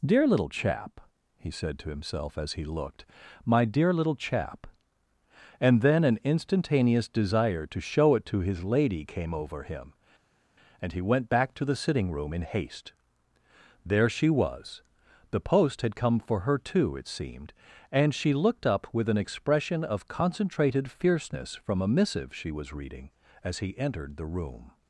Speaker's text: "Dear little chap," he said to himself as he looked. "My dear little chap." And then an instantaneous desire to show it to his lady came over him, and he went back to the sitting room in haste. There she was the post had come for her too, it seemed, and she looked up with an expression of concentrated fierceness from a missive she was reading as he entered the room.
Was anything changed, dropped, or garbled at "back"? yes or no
no